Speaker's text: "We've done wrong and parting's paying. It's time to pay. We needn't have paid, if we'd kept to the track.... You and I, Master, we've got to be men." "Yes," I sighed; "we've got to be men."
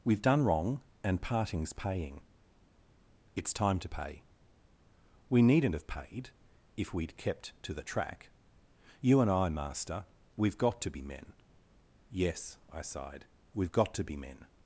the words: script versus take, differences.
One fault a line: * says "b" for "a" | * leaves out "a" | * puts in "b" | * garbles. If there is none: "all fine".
all fine